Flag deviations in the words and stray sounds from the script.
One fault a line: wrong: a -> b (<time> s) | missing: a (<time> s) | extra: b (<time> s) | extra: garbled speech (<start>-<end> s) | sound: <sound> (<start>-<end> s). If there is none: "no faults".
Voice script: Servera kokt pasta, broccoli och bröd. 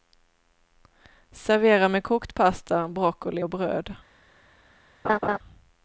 extra: med (1.9 s)
sound: laugh (5.0-5.4 s)